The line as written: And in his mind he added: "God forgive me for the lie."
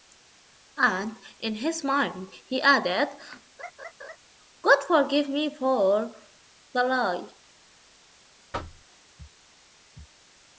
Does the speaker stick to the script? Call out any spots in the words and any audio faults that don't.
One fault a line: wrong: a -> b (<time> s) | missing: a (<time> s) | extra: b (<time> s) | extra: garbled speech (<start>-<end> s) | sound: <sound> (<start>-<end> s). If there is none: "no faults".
sound: laugh (3.6-4.2 s)
sound: thud (8.5-8.9 s)